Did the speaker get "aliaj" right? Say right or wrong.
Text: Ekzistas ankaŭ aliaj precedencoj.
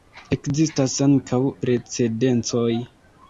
wrong